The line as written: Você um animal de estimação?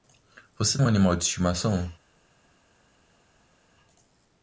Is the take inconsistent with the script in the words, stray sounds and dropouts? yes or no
no